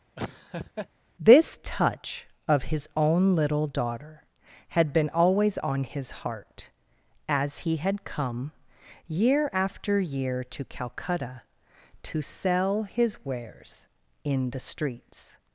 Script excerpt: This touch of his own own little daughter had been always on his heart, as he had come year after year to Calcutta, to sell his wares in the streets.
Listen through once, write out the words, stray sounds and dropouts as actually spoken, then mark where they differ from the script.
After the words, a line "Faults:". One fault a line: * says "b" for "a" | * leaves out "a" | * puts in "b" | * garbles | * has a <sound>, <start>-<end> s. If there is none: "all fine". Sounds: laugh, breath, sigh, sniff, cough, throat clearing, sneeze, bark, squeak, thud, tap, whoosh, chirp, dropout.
This touch of his own little daughter had been always on his heart, as he had come year after year to Calcutta, to sell his wares in the streets.
Faults:
* has a laugh, 0.2-0.9 s
* leaves out "own"